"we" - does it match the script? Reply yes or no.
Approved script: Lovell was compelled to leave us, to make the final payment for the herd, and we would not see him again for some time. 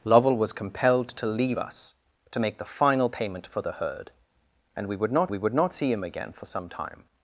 yes